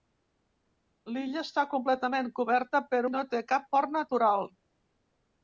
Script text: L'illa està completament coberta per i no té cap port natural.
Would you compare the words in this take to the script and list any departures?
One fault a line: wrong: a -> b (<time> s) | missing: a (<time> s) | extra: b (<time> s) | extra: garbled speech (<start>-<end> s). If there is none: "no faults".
no faults